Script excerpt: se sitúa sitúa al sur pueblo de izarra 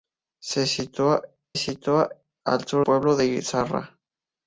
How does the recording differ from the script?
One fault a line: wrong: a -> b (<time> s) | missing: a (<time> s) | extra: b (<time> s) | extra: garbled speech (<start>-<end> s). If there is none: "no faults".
no faults